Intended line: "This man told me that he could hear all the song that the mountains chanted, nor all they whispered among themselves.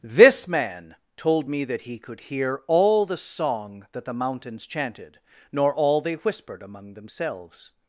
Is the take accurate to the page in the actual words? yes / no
yes